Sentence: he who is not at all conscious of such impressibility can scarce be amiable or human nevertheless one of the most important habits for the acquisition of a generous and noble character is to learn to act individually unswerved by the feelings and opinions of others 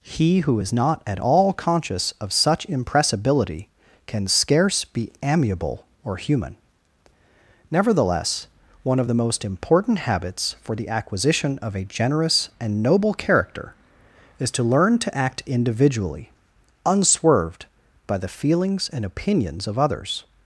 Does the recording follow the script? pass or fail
pass